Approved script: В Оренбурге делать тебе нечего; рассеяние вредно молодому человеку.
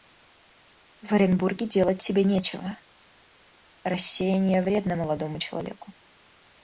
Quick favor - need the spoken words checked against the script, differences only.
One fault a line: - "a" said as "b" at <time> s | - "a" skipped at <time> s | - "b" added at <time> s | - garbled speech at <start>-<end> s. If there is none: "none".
none